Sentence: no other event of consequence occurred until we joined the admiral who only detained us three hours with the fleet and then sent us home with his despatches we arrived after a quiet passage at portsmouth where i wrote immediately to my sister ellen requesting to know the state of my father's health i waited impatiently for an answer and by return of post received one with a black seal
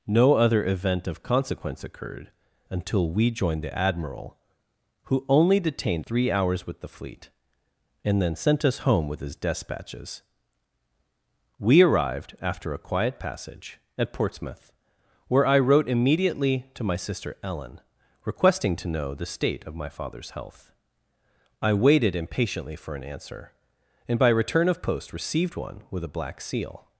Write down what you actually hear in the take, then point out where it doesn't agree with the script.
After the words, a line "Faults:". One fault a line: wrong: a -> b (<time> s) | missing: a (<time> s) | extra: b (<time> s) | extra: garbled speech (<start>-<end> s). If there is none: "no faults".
no other event of consequence occurred until we joined the admiral who only detained three hours with the fleet and then sent us home with his despatches we arrived after a quiet passage at portsmouth where i wrote immediately to my sister ellen requesting to know the state of my father's health i waited impatiently for an answer and by return of post received one with a black seal
Faults:
missing: us (6.1 s)